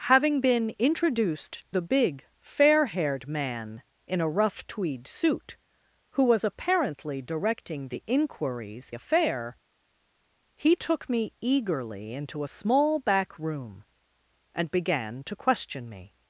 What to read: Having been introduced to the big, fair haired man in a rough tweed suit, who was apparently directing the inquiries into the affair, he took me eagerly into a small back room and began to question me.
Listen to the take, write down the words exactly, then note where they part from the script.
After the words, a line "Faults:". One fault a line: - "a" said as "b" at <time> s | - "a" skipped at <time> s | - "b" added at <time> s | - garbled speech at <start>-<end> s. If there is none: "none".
Having been introduced the big, fair haired man in a rough tweed suit, who was apparently directing the inquiries affair, he took me eagerly into a small back room and began to question me.
Faults:
- "to" skipped at 1.7 s
- "into the" skipped at 8.9 s